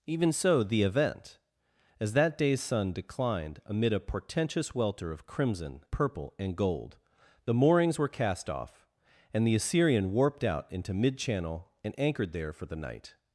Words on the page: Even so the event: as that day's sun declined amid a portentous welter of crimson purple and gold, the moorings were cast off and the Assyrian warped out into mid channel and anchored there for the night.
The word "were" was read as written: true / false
true